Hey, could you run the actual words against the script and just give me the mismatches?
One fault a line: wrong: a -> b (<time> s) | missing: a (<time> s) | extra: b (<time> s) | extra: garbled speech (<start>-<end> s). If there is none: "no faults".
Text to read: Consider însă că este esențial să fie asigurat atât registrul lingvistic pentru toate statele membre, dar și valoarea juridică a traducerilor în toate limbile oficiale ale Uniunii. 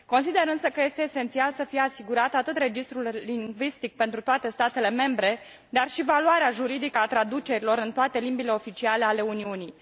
no faults